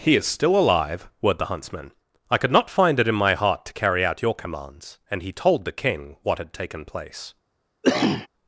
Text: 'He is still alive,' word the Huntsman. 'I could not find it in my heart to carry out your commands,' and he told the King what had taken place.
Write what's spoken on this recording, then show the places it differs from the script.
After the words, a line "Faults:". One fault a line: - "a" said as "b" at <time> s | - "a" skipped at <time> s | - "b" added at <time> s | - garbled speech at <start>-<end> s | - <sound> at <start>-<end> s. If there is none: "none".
'He is still alive,' word the Huntsman. 'I could not find it in my heart to carry out your commands,' and he told the King what had taken place.
Faults:
- cough at 7.8-8.3 s